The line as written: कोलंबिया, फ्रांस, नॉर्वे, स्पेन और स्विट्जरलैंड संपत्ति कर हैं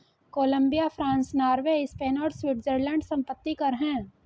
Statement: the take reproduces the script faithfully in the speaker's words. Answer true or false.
true